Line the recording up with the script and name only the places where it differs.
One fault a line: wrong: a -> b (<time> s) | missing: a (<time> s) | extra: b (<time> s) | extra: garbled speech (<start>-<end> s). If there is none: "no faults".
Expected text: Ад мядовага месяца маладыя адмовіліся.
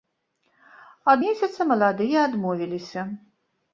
missing: мядовага (1.2 s)